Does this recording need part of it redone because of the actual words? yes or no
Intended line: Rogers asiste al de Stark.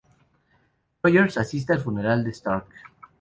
yes